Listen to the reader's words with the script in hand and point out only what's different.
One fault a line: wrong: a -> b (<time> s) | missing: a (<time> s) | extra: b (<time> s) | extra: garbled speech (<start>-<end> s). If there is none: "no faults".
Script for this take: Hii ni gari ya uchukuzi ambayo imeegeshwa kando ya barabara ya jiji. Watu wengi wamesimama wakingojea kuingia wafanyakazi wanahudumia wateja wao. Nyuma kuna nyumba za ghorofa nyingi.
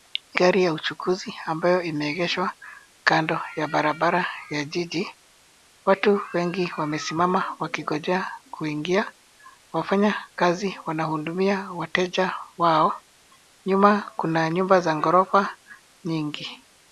missing: ni (0.4 s)